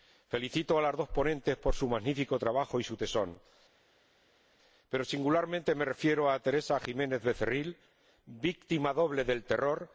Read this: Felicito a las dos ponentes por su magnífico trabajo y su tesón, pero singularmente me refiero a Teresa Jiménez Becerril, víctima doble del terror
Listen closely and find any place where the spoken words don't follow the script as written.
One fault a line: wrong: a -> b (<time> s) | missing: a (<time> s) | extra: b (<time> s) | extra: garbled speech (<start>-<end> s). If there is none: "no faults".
no faults